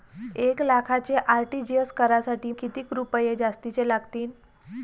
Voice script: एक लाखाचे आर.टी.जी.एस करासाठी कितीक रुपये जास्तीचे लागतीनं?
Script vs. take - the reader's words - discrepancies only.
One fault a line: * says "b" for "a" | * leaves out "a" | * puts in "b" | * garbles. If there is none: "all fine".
all fine